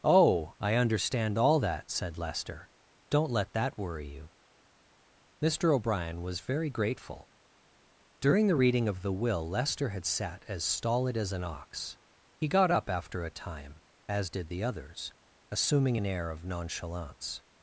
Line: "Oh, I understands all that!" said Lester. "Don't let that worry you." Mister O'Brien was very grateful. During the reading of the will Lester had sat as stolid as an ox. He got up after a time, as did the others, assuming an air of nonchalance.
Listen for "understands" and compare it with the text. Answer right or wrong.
wrong